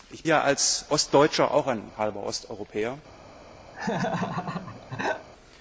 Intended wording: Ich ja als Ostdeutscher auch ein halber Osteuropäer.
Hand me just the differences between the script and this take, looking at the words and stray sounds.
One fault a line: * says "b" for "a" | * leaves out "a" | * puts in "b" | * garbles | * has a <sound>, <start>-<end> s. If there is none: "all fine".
* has a laugh, 3.7-5.3 s